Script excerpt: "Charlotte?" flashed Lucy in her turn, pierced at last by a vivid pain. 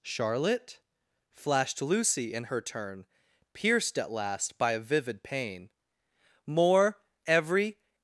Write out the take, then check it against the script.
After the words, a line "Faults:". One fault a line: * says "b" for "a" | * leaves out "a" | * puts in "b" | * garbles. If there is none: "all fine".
"Charlotte?" flashed Lucy in her turn, pierced at last by a vivid pain. "More every
Faults:
* puts in "More every"